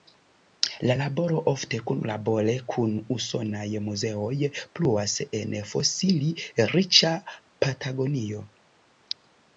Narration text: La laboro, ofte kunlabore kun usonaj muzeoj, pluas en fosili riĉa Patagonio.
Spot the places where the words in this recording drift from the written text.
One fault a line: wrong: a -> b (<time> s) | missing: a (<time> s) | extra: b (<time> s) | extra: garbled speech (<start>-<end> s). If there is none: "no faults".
no faults